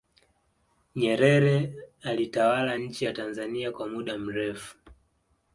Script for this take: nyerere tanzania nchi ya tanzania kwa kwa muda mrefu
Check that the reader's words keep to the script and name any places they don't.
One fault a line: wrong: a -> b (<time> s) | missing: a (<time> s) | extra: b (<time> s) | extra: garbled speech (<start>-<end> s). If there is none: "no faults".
wrong: tanzania -> alitawala (2.0 s)
missing: kwa (3.9 s)